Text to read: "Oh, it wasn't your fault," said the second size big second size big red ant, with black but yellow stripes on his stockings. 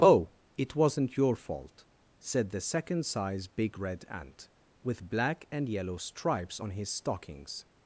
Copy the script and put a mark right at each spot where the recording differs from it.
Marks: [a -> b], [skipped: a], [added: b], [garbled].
"Oh, it wasn't your fault," said the second size big [skipped: second size big] red ant, with black [but -> and] yellow stripes on his stockings.